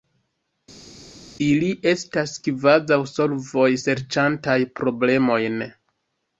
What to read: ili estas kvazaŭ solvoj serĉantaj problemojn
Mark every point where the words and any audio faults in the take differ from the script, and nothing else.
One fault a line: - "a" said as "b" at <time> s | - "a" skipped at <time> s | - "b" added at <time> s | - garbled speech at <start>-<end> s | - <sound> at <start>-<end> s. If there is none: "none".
none